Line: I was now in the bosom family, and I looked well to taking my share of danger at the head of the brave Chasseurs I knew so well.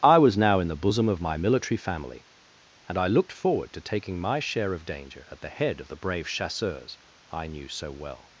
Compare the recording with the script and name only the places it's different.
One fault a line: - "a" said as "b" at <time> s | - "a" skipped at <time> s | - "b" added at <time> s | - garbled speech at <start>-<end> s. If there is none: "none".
- "of my military" added at 1.1 s
- "well" said as "forward" at 3.3 s